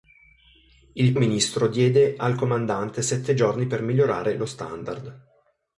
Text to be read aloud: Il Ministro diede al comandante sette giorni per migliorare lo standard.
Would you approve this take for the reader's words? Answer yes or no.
yes